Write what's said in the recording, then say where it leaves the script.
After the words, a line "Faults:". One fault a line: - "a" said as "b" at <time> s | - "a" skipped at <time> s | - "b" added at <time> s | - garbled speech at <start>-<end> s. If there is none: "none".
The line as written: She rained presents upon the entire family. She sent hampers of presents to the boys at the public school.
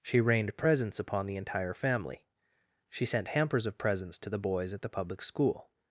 She rained presents upon the entire family. She sent hampers of presents to the boys at the public school.
Faults:
none